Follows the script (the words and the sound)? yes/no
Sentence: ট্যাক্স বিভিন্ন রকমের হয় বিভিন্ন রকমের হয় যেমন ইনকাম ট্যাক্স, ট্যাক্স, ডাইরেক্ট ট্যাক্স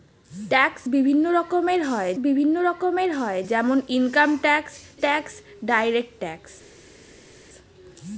yes